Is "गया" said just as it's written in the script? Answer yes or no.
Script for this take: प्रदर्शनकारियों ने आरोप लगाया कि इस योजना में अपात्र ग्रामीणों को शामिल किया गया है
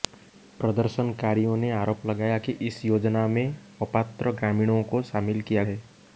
no